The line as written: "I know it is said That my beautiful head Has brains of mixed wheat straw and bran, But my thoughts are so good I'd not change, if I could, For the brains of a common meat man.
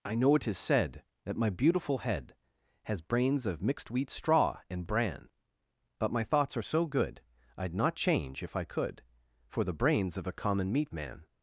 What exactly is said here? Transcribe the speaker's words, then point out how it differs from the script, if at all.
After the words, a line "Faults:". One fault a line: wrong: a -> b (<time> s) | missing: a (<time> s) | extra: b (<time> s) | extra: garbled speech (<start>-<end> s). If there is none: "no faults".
"I know it is said That my beautiful head Has brains of mixed wheat straw and bran, But my thoughts are so good I'd not change, if I could, For the brains of a common meat man.
Faults:
no faults